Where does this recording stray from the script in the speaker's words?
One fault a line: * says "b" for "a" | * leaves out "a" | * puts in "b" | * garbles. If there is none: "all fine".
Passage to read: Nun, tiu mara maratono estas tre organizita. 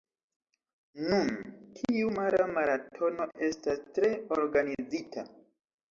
all fine